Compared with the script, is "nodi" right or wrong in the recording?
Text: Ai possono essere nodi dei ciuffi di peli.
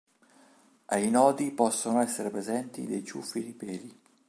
wrong